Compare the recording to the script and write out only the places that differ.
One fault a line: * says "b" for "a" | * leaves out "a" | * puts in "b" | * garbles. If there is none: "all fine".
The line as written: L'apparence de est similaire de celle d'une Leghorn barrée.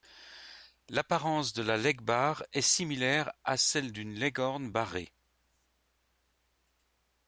* puts in "la Legbar"
* says "à" for "de"